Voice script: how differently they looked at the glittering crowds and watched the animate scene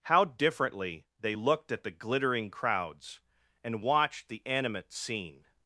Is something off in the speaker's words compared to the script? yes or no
no